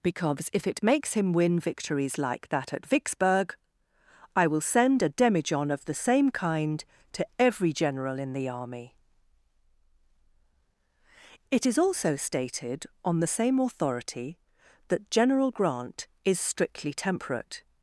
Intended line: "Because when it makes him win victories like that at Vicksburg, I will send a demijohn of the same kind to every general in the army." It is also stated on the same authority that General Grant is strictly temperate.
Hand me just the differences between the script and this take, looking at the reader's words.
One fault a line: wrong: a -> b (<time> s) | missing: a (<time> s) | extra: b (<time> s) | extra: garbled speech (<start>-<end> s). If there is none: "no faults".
wrong: when -> if (0.5 s)